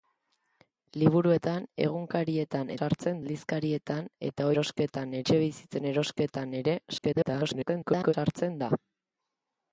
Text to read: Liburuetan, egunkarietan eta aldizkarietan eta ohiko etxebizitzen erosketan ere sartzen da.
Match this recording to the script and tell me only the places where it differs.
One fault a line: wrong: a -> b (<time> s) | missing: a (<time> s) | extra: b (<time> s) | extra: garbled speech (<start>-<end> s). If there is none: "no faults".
wrong: eta -> sartzen (2.8 s)
wrong: ohiko -> erosketan (4.5 s)
extra: garbled speech (7.0-8.1 s)